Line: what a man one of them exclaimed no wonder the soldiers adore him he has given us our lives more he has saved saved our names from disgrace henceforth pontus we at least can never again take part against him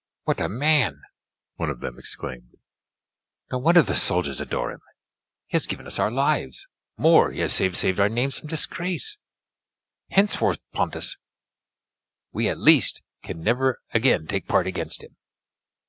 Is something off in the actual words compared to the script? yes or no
no